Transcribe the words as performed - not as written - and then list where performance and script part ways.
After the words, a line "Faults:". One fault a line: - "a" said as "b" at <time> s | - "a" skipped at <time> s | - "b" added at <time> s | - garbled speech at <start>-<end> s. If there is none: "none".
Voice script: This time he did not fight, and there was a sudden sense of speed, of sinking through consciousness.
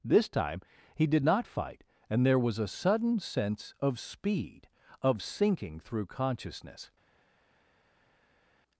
This time he did not fight, and there was a sudden sense of speed, of sinking through consciousness.
Faults:
none